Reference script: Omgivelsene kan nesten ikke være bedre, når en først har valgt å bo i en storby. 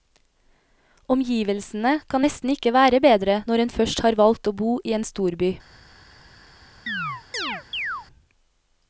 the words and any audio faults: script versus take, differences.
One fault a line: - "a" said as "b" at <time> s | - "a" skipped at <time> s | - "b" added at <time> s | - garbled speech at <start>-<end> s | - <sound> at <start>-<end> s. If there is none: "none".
- chirp at 6.9-8.1 s